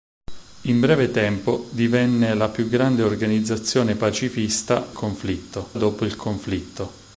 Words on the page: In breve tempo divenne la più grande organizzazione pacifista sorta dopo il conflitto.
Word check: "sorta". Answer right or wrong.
wrong